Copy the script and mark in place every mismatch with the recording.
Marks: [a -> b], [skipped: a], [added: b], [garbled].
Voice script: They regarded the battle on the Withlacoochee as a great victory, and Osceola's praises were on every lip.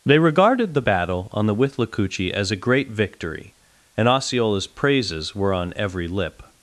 They regarded the battle on the Withlacoochee as a great victory, and Osceola's praises were on every lip.